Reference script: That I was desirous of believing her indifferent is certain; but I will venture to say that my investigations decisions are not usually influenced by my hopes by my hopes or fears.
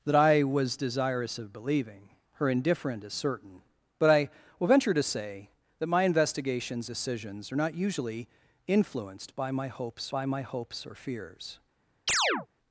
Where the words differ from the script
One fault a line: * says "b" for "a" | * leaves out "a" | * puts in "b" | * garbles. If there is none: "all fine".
all fine